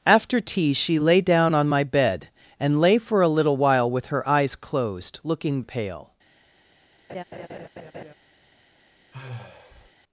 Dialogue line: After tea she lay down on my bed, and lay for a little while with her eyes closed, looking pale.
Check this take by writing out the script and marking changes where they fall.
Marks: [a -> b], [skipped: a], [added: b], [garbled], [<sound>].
After tea she lay down on my bed, and lay for a little while with her eyes closed, looking pale. [laugh] [sigh]